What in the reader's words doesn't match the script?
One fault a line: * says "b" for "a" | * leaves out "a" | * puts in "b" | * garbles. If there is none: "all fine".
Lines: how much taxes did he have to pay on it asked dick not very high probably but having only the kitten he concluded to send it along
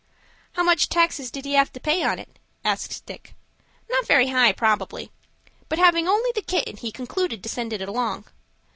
all fine